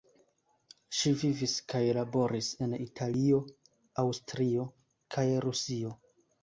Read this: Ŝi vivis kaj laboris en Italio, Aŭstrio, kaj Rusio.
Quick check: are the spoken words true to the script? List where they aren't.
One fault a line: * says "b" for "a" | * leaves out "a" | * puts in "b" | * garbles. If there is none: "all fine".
all fine